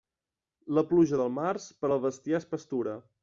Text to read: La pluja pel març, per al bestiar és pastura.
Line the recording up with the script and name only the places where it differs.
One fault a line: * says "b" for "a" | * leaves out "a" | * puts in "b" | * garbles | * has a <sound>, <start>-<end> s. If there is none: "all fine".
* says "del" for "pel"